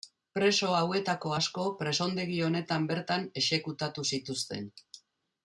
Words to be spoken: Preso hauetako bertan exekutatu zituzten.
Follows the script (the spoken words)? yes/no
no